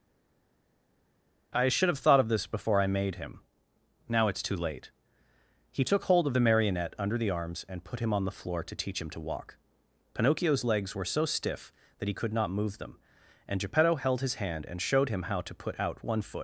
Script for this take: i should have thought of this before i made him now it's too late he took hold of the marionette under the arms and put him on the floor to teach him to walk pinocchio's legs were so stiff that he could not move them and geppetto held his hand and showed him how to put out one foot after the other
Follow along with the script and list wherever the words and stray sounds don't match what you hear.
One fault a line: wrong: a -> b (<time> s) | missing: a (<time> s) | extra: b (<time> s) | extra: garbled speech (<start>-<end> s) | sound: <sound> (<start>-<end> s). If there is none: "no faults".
missing: after the other (16.4 s)